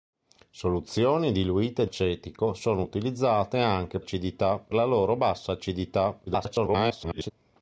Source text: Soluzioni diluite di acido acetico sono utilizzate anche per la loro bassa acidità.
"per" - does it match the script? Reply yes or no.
no